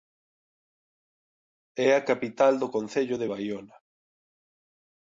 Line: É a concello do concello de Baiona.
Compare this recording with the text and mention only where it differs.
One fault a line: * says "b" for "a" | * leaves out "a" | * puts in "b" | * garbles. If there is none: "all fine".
* says "capital" for "concello"